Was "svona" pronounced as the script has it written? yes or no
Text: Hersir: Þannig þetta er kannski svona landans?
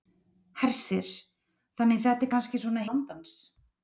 yes